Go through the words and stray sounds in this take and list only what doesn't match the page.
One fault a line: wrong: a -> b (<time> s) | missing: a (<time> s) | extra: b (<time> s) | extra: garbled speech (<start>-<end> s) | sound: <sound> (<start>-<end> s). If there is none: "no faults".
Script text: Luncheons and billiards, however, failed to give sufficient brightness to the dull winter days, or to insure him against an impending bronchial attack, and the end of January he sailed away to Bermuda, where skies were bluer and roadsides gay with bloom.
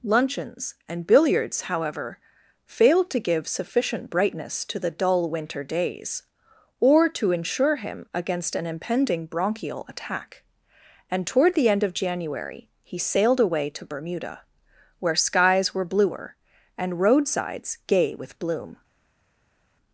extra: toward (11.3 s)